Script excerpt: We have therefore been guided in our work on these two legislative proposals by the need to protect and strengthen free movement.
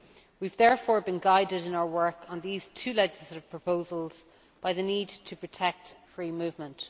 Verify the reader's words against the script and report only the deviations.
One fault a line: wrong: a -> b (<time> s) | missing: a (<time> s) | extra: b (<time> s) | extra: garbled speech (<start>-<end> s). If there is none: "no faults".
missing: and strengthen (6.0 s)